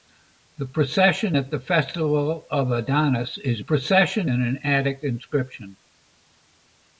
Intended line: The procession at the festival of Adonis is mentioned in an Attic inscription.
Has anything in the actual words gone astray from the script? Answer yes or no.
yes